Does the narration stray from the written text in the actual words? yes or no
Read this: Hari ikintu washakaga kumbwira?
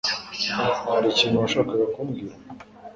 no